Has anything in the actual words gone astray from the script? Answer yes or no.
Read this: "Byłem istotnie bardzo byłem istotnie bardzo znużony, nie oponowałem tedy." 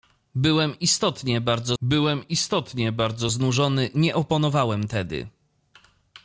no